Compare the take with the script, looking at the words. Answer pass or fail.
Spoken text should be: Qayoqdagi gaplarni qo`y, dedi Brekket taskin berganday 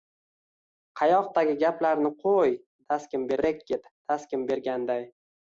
fail